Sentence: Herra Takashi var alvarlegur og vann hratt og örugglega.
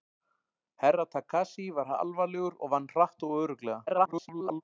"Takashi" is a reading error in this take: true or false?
false